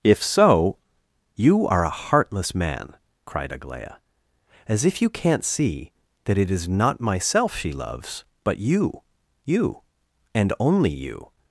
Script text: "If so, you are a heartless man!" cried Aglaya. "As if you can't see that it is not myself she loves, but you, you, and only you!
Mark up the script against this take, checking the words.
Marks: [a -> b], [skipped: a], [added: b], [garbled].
"If so, you are a heartless man!" cried Aglaya. "As if you can't see that it is not myself she loves, but you, you, and only you!